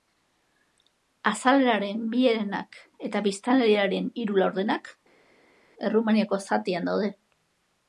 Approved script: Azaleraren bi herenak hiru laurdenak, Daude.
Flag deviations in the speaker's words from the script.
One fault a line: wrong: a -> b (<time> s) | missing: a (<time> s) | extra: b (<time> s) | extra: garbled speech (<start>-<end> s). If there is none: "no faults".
extra: eta biztanleriaren (3.1 s)
extra: Errumaniako zatian (5.9 s)